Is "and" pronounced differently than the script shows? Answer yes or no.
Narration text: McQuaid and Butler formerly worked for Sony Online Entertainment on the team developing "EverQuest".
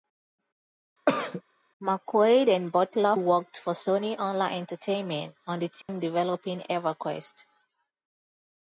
no